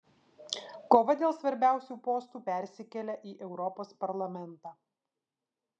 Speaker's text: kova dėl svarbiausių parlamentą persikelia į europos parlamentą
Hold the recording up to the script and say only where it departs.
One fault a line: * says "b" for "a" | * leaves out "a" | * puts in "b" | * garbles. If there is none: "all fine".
* says "postų" for "parlamentą"